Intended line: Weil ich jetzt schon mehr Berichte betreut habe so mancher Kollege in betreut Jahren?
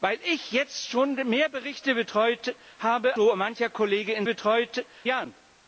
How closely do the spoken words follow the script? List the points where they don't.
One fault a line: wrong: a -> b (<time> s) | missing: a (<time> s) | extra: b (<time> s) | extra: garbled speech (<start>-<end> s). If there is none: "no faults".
no faults